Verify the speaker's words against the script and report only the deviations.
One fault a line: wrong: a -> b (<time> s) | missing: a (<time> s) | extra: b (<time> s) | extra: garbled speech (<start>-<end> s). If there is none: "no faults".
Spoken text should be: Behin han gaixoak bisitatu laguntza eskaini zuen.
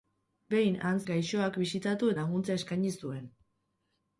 no faults